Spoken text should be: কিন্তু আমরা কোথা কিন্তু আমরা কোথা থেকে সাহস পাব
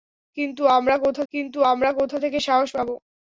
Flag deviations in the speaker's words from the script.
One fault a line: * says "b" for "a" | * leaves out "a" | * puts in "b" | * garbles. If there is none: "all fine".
all fine